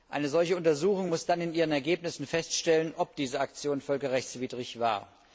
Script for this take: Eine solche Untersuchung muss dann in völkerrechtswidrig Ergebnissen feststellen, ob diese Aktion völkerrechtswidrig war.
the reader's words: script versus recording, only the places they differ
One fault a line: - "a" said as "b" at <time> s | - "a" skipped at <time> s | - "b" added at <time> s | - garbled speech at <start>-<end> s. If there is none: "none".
- "völkerrechtswidrig" said as "ihren" at 1.5 s